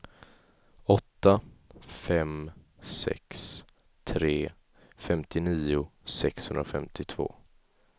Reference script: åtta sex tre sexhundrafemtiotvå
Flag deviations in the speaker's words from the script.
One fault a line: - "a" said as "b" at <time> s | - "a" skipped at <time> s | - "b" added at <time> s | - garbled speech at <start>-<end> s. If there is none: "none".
- "fem" added at 1.8 s
- "femtionio" added at 5.0 s